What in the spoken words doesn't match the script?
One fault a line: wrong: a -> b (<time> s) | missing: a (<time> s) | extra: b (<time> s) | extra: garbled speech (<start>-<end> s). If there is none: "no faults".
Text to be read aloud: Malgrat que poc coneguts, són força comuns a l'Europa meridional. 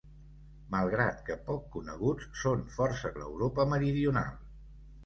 missing: comuns (3.1 s)